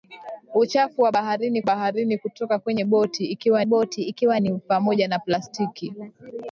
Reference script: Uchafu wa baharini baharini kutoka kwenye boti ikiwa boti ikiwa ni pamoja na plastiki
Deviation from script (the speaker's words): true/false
false